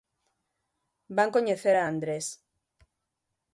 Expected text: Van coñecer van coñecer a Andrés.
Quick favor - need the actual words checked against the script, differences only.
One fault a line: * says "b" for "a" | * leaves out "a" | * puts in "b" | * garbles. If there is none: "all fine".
* leaves out "van coñecer"